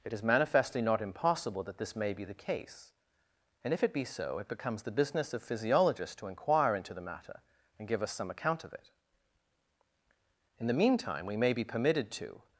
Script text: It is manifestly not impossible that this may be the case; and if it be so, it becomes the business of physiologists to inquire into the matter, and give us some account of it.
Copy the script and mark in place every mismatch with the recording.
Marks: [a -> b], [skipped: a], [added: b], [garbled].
It is manifestly not impossible that this may be the case; and if it be so, it becomes the business of physiologists to inquire into the matter, and give us some account of it. [added: In the meantime we may be permitted to]